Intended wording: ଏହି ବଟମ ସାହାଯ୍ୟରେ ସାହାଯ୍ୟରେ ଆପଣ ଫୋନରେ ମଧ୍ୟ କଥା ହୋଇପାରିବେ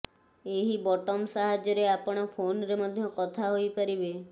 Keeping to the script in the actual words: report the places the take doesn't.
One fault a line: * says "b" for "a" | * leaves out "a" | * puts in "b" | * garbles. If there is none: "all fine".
* leaves out "ସାହାଯ୍ୟରେ"